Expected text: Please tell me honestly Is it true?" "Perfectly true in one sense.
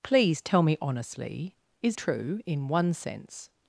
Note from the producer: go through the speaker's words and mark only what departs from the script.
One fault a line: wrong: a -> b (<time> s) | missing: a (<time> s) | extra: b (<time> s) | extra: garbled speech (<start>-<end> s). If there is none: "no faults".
missing: it true Perfectly (2.0 s)